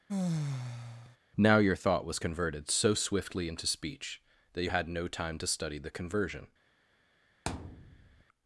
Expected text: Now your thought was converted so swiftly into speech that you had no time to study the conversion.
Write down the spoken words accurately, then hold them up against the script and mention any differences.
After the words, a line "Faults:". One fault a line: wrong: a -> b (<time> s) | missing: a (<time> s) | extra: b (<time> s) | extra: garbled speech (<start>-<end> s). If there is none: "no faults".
Now your thought was converted so swiftly into speech that you had no time to study the conversion.
Faults:
no faults